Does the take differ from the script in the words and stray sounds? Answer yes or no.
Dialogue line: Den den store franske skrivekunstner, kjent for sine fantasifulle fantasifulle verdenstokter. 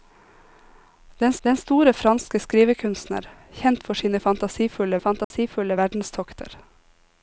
yes